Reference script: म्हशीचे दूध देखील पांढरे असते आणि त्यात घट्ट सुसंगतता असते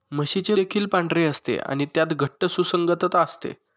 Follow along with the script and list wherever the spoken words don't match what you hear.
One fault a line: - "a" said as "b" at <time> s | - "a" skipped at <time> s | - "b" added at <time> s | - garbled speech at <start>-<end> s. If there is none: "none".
- "दूध" skipped at 0.6 s